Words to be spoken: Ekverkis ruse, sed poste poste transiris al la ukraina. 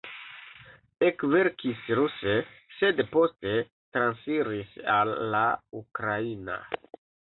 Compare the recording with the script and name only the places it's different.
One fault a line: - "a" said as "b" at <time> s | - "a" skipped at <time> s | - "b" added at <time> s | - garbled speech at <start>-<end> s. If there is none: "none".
- "poste" skipped at 3.5 s